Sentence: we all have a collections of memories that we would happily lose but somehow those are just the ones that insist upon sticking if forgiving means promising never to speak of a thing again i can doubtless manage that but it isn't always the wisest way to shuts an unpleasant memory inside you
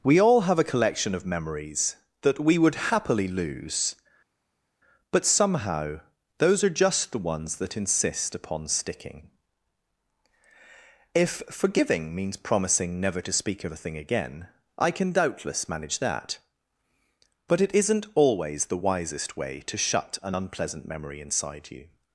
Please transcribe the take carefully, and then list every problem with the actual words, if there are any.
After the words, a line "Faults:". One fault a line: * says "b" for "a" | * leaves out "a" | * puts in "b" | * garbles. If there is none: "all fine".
we all have a collection of memories that we would happily lose but somehow those are just the ones that insist upon sticking if forgiving means promising never to speak of a thing again i can doubtless manage that but it isn't always the wisest way to shut an unpleasant memory inside you
Faults:
* says "collection" for "collections"
* says "shut" for "shuts"